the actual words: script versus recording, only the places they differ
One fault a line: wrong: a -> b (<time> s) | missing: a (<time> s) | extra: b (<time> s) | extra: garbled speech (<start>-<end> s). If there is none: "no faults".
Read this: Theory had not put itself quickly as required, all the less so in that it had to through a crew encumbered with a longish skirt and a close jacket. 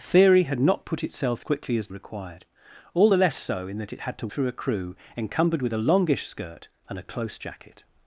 no faults